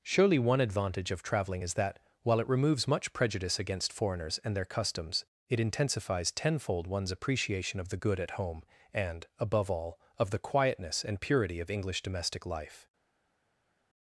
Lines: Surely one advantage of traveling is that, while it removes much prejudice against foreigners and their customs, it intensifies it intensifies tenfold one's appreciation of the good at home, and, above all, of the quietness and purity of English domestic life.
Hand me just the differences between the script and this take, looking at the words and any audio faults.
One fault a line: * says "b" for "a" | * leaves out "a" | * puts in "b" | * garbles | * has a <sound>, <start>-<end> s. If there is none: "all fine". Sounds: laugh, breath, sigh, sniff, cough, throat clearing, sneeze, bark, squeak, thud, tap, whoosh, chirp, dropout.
* leaves out "it intensifies"